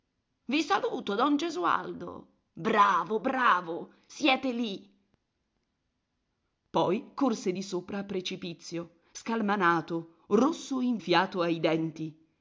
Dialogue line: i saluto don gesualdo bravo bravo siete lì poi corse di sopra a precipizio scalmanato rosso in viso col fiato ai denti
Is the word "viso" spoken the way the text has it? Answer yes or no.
no